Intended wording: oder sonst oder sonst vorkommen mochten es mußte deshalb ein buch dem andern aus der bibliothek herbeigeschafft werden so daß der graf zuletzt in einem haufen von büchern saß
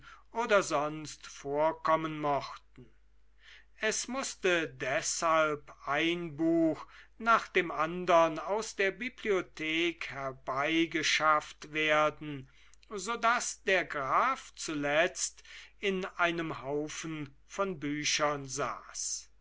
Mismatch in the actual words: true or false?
true